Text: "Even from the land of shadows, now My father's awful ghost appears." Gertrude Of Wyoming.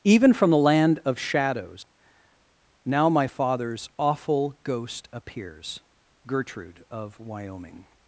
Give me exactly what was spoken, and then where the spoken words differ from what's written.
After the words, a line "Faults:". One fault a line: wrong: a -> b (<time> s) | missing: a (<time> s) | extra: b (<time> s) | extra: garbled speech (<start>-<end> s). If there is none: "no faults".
"Even from the land of shadows, now My father's awful ghost appears." Gertrude Of Wyoming.
Faults:
no faults